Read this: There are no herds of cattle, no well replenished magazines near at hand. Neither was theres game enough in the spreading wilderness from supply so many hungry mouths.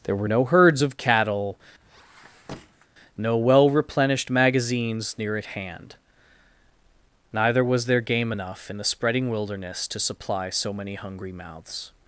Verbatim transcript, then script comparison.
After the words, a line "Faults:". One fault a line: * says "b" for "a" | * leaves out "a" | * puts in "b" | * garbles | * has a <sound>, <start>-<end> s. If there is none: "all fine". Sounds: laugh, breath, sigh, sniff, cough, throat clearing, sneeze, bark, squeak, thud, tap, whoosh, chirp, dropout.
There were no herds of cattle, no well replenished magazines near at hand. Neither was there game enough in the spreading wilderness to supply so many hungry mouths.
Faults:
* says "were" for "are"
* has a squeak, 1.8-2.9 s
* says "there" for "theres"
* says "to" for "from"